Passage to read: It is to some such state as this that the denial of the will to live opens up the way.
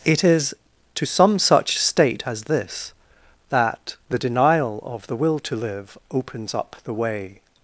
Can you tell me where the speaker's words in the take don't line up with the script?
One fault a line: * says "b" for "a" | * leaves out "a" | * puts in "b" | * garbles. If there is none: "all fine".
all fine